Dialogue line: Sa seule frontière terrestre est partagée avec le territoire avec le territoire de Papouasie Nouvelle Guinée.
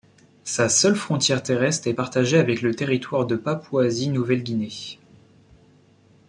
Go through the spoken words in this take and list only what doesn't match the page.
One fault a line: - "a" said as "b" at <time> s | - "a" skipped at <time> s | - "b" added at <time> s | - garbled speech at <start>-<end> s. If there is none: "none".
- "avec le territoire" skipped at 3.3 s